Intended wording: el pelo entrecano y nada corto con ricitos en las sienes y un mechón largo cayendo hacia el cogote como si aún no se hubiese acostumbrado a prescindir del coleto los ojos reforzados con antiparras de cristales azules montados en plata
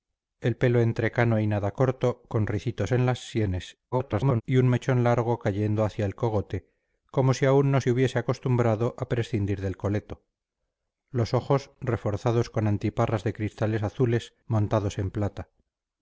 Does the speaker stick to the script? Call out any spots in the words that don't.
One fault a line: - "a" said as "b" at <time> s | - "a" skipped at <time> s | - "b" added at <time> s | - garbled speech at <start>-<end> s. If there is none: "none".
- garbled speech at 3.9-4.4 s